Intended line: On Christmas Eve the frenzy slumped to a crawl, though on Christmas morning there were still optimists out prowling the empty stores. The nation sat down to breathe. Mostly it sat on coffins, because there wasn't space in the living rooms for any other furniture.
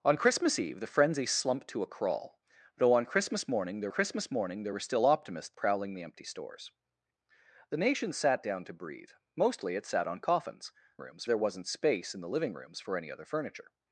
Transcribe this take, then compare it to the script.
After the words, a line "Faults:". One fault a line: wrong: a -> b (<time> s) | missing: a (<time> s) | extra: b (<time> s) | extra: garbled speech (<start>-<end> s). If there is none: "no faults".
On Christmas Eve the frenzy slumped to a crawl, though on Christmas morning there Christmas morning there were still optimists prowling the empty stores. The nation sat down to breathe. Mostly it sat on coffins, rooms there wasn't space in the living rooms for any other furniture.
Faults:
extra: Christmas morning there (3.9 s)
missing: out (5.6 s)
wrong: because -> rooms (11.0 s)